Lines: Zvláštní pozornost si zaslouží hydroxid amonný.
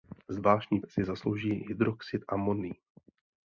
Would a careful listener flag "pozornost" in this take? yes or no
yes